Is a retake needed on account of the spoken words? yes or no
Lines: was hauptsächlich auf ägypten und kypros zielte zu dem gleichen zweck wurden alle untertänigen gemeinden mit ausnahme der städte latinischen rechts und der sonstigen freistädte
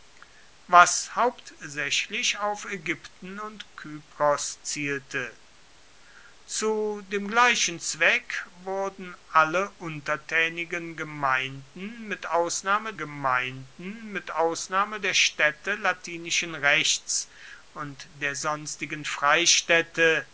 yes